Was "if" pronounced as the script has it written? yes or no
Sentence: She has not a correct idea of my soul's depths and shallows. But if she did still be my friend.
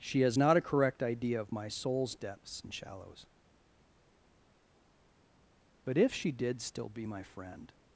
yes